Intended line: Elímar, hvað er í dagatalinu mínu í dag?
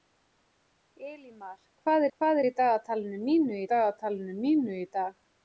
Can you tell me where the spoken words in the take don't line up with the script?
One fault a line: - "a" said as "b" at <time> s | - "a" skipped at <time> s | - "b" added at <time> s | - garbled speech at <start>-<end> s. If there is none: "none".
- "hvað" added at 2.2 s
- "dagatalinu mínu" added at 3.7 s